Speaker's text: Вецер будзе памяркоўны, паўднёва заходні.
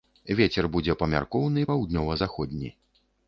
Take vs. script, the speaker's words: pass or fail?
pass